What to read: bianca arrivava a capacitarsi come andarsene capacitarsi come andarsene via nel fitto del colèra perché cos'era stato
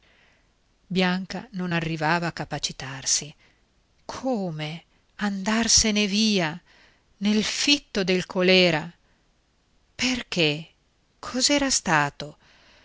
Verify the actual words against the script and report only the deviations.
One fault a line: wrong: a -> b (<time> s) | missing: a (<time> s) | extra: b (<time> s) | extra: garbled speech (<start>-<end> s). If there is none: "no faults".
extra: non (1.5 s)
missing: capacitarsi come andarsene (6.1 s)